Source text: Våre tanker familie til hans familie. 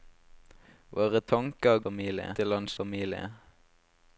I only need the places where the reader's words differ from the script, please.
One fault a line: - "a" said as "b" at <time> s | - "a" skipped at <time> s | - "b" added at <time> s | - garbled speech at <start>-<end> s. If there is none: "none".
none